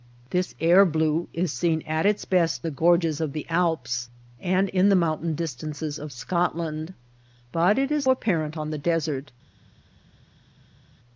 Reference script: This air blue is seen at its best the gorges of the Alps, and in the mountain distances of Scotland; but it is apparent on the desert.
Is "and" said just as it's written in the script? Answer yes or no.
yes